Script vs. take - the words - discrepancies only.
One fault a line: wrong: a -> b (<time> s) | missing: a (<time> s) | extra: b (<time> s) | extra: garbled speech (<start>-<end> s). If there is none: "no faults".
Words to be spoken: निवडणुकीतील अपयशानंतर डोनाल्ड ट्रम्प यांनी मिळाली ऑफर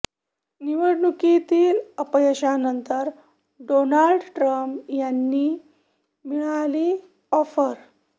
no faults